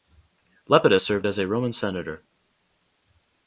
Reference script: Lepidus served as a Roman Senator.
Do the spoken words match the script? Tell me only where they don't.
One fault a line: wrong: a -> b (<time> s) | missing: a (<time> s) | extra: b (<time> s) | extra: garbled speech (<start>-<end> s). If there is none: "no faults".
no faults